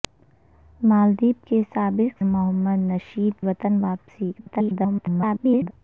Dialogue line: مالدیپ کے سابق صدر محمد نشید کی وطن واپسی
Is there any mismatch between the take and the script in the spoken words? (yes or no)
yes